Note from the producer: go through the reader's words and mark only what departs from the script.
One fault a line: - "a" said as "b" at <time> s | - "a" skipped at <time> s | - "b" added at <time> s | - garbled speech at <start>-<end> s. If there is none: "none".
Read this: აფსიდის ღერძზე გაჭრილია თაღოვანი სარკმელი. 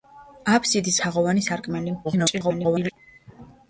- "ღერძზე გაჭრილია" skipped at 0.9 s
- garbled speech at 2.0-2.9 s